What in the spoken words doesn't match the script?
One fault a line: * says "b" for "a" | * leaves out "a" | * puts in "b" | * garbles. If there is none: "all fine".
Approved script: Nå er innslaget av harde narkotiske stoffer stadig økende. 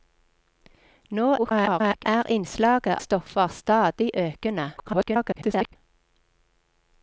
* garbles
* leaves out "av harde narkotiske"
* garbles